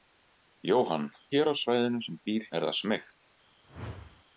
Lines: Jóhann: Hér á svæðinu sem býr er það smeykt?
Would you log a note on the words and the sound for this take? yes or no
yes